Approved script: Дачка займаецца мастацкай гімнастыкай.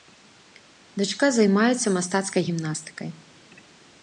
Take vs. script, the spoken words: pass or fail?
pass